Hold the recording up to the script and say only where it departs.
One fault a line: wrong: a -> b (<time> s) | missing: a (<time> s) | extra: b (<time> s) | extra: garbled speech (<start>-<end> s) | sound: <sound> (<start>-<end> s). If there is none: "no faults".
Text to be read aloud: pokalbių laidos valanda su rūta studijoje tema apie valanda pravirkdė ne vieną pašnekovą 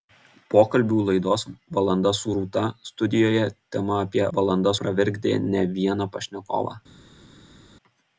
no faults